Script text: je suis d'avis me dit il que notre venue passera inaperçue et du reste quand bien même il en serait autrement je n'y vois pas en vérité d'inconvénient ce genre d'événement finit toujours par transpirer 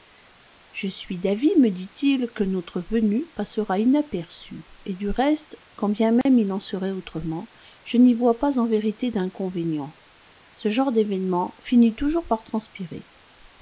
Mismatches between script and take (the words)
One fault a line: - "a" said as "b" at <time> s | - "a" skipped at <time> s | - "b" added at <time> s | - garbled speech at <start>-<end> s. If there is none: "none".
none